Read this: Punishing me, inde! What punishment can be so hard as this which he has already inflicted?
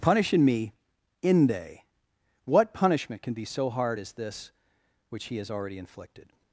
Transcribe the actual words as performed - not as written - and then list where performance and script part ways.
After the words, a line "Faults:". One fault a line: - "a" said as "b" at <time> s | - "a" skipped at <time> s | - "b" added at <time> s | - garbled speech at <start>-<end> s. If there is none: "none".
Punishing me, inde! What punishment can be so hard as this which he has already inflicted?
Faults:
none